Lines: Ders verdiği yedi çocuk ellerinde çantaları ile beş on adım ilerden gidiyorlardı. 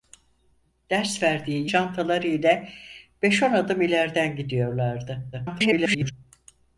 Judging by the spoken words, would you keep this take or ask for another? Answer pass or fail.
fail